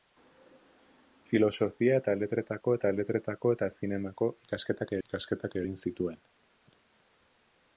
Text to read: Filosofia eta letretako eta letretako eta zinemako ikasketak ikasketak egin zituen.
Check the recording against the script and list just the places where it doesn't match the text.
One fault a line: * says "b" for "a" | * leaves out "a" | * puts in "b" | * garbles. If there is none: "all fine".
all fine